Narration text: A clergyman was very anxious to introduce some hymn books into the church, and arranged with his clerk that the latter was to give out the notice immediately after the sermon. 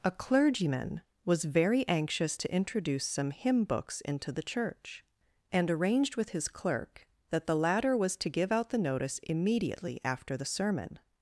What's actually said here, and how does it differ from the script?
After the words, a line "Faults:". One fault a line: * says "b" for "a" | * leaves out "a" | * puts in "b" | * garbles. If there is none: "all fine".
A clergyman was very anxious to introduce some hymn books into the church, and arranged with his clerk that the latter was to give out the notice immediately after the sermon.
Faults:
all fine